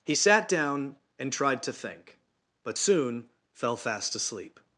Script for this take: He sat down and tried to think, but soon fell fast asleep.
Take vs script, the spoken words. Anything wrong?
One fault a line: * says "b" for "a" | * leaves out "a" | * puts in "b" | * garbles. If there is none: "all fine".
all fine